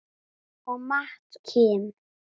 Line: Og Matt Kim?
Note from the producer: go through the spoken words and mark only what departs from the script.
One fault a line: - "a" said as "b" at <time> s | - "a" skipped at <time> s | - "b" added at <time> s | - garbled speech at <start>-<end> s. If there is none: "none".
none